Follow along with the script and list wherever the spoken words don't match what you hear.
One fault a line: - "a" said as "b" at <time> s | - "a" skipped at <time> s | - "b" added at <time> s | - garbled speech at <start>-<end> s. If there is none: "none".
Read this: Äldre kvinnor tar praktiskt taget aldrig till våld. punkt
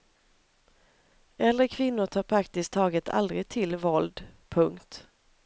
none